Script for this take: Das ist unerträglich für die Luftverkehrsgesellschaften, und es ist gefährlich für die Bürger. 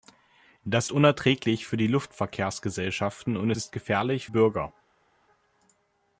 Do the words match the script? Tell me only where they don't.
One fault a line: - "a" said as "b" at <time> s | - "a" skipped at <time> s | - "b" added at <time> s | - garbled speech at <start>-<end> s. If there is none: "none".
- "ist" skipped at 0.9 s
- "es" skipped at 3.5 s
- "für die" skipped at 4.3 s